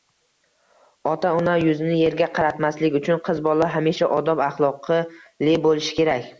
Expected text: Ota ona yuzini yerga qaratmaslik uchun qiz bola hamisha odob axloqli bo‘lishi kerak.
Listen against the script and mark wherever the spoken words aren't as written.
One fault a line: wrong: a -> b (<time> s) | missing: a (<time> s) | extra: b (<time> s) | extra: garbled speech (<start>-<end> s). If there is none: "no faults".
no faults